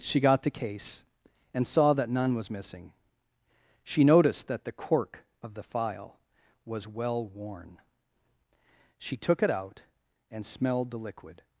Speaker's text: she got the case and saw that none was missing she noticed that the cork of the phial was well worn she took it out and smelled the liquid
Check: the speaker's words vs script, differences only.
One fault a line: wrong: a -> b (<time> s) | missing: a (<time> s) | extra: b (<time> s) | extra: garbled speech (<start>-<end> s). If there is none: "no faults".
no faults